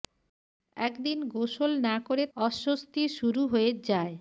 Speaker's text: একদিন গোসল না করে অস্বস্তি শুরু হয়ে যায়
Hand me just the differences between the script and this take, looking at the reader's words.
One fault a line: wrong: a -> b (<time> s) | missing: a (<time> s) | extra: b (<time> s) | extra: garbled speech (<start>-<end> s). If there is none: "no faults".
no faults